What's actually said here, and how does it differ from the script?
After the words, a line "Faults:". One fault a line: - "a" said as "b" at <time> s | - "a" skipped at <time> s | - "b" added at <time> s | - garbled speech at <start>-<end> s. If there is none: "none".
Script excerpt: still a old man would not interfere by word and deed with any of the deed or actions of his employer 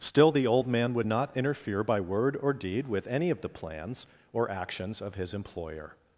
still the old man would not interfere by word or deed with any of the plans or actions of his employer
Faults:
- "a" said as "the" at 0.3 s
- "and" said as "or" at 2.4 s
- "deed" said as "plans" at 3.5 s